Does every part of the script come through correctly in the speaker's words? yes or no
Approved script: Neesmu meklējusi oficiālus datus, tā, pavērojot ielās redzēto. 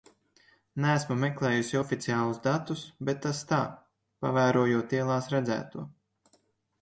no